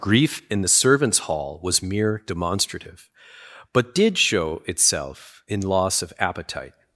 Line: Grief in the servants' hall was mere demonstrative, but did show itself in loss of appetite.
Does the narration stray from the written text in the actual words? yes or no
no